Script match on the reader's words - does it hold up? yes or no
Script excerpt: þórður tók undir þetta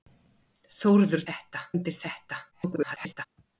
no